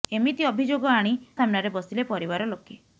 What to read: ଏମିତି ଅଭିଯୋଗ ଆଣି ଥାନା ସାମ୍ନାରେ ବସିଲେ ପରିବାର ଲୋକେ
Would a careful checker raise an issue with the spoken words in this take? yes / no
yes